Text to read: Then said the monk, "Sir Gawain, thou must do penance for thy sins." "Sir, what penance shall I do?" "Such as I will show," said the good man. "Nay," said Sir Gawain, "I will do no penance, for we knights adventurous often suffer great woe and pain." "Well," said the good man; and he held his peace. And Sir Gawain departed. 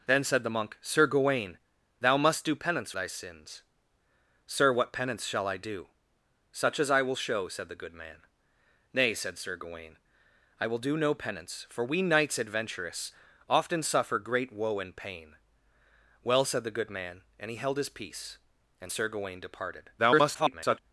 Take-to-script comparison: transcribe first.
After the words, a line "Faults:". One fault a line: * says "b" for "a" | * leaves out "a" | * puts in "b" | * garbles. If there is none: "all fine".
Then said the monk, "Sir Gawain, thou must do penance thy sins." "Sir, what penance shall I do?" "Such as I will show," said the good man. "Nay," said Sir Gawain, "I will do no penance, for we knights adventurous often suffer great woe and pain." "Well," said the good man; and he held his peace. And Sir Gawain departed. [garbled]
Faults:
* leaves out "for"
* garbles